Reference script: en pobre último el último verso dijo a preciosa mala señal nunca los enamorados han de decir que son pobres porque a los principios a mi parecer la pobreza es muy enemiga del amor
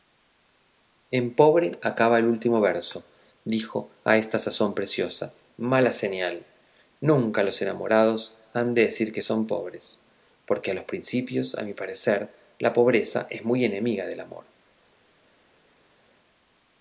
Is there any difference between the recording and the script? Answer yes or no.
yes